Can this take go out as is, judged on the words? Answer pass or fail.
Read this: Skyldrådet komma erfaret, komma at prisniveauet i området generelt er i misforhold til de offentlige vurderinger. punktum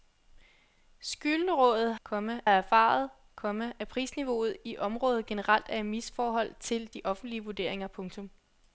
pass